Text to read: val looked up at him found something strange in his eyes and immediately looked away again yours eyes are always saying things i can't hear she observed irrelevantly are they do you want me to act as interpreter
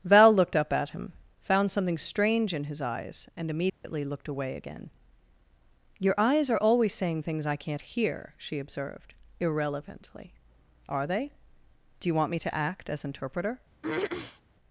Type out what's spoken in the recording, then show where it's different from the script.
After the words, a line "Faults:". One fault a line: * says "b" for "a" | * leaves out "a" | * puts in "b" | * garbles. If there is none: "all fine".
val looked up at him found something strange in his eyes and immediately looked away again your eyes are always saying things i can't hear she observed irrelevantly are they do you want me to act as interpreter
Faults:
* says "your" for "yours"